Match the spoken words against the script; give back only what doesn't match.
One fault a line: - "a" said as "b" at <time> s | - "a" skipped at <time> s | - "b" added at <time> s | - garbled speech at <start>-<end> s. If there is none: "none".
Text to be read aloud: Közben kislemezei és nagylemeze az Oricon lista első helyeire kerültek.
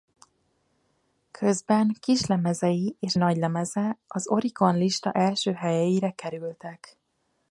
none